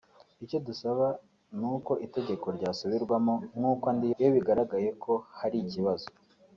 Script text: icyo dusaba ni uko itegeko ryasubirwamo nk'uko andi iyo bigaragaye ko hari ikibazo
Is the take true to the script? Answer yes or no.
yes